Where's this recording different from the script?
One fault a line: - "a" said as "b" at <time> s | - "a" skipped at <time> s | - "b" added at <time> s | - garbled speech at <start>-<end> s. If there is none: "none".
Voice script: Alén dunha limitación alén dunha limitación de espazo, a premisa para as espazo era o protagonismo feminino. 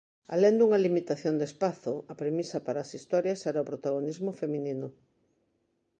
- "alén dunha limitación" skipped at 1.4 s
- "espazo" said as "historias" at 3.0 s